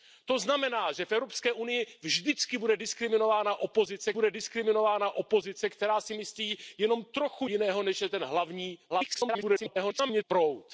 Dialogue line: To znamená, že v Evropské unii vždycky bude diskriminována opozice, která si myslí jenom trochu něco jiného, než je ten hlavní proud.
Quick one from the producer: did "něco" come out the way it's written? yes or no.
no